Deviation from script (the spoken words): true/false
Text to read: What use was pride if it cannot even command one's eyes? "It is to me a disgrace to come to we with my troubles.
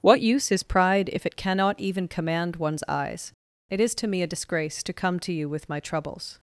true